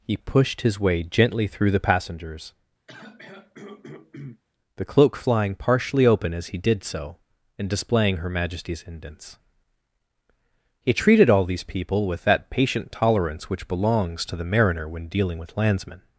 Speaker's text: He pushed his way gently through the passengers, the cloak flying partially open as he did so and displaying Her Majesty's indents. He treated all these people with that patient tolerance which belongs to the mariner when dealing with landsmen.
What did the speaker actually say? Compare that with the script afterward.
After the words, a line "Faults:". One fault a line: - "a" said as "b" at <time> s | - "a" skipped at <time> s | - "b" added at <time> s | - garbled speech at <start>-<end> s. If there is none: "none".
He pushed his way gently through the passengers, the cloak flying partially open as he did so and displaying Her Majesty's indents. He treated all these people with that patient tolerance which belongs to the mariner when dealing with landsmen.
Faults:
none